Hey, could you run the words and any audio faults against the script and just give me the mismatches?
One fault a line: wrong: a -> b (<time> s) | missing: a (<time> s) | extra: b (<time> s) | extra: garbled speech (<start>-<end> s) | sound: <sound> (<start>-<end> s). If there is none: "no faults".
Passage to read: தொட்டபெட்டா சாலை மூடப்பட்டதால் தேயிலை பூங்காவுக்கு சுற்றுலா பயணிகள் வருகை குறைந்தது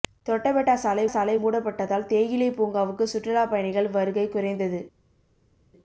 extra: சாலை (1.1 s)